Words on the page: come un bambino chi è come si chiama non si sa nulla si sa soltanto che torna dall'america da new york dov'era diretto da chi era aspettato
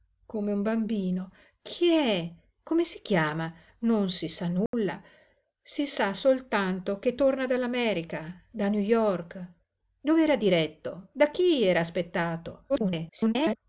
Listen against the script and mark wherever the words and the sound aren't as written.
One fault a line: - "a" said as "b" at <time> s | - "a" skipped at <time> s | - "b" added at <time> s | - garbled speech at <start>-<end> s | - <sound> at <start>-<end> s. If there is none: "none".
- dropout at 4.7-4.7 s
- garbled speech at 12.7-13.6 s